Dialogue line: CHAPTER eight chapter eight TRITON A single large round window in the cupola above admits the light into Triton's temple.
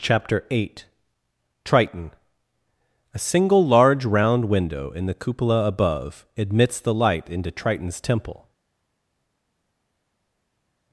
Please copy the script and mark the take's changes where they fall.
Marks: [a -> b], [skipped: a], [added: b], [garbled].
CHAPTER eight [skipped: chapter eight] TRITON A single large round window in the cupola above admits the light into Triton's temple.